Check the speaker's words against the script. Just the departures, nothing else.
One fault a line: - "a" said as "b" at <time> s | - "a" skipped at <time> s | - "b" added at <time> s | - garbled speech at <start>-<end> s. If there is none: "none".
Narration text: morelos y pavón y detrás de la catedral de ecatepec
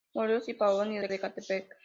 - "detrás" skipped at 1.0 s
- "catedral" skipped at 1.1 s